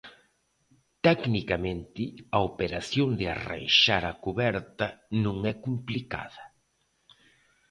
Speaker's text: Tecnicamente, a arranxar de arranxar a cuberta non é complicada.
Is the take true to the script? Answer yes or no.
no